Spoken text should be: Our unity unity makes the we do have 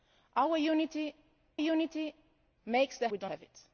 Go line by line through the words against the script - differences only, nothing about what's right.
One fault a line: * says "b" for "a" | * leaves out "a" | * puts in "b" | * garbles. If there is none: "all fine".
all fine